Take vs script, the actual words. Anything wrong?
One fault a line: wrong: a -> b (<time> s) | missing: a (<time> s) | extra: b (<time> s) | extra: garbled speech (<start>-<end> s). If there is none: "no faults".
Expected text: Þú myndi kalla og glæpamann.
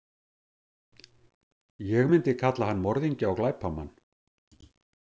wrong: Þú -> Ég (1.9 s)
extra: hann morðingja (2.7 s)